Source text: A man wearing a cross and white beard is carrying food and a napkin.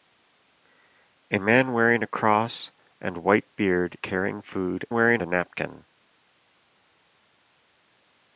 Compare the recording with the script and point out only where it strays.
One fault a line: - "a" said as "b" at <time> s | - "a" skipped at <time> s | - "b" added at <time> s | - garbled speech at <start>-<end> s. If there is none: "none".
- "is" skipped at 4.0 s
- "and" said as "wearing" at 4.9 s